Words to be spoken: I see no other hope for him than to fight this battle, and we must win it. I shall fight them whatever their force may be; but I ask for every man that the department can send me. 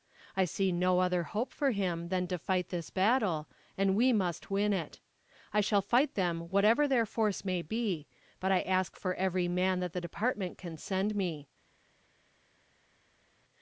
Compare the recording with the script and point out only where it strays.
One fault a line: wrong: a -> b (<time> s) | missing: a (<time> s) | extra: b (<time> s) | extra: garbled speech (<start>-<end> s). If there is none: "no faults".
no faults